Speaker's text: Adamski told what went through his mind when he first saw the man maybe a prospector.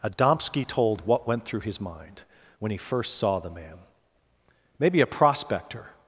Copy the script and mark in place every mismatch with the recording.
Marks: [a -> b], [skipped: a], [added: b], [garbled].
Adamski told what went through his mind when he first saw the man maybe a prospector.